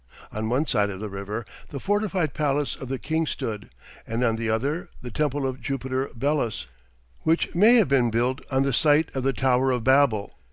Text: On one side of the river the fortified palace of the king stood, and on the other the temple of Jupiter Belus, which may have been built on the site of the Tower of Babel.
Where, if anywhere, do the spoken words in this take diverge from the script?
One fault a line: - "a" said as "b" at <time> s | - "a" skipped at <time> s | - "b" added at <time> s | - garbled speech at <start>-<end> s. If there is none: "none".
none